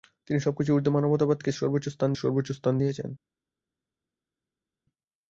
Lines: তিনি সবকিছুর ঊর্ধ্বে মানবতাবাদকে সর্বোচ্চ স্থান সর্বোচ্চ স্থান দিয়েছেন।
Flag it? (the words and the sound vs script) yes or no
no